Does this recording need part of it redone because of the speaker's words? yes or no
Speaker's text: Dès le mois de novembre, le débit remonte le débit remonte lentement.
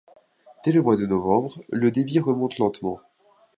yes